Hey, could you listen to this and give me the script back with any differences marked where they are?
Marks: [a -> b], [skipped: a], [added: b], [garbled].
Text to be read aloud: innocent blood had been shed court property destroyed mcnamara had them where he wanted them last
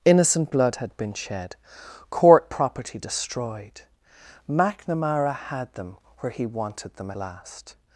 innocent blood had been shed court property destroyed mcnamara had them where he wanted them last